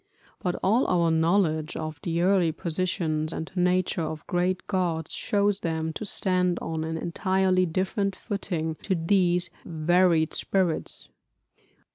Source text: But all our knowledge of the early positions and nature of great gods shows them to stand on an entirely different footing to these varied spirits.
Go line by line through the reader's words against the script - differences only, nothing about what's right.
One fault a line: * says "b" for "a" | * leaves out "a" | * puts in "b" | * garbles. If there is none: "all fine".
all fine